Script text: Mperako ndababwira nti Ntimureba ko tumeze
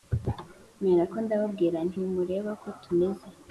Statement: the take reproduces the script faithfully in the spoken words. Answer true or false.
true